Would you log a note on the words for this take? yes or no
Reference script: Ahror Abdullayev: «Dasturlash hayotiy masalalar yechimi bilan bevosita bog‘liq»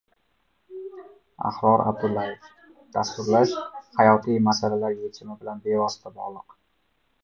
no